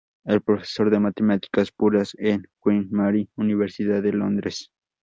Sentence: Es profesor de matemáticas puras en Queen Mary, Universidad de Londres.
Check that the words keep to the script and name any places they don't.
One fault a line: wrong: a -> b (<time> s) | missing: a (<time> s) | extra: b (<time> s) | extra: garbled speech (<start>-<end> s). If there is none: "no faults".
no faults